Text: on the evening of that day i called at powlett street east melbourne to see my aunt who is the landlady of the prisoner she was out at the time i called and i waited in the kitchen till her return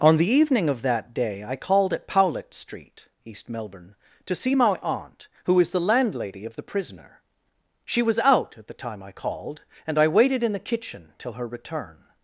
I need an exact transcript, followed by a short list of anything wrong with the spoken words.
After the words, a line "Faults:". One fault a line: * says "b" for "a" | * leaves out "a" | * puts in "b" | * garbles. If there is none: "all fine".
on the evening of that day i called at powlett street east melbourne to see my aunt who is the landlady of the prisoner she was out at the time i called and i waited in the kitchen till her return
Faults:
all fine